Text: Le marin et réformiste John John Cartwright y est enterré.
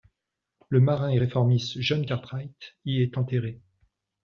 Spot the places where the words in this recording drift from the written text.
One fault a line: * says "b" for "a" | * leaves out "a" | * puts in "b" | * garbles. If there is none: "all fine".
* leaves out "John"